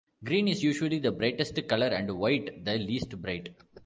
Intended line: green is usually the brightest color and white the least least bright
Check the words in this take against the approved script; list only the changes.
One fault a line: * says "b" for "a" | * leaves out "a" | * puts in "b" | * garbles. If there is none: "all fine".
* leaves out "least"